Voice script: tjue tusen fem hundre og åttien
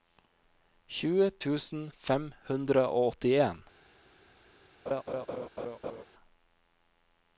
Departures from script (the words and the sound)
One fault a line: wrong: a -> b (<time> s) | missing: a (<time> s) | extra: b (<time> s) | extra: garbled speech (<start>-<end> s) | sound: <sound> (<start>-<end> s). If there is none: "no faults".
sound: laugh (4.9-6.0 s)